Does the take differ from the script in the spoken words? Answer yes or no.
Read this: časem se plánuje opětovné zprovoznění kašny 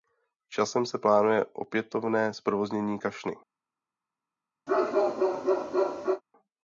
no